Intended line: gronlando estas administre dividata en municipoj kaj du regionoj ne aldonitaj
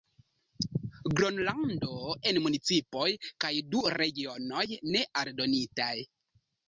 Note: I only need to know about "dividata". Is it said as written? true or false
false